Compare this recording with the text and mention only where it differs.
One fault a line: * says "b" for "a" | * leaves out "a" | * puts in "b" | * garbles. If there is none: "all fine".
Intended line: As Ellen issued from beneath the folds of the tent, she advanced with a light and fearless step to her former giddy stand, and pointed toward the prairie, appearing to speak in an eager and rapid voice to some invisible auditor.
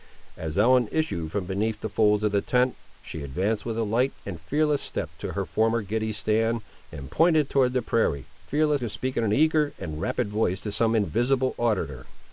* says "fearless" for "appearing"